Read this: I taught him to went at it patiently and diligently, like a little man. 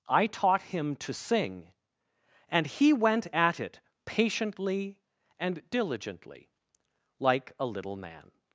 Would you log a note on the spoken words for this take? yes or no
yes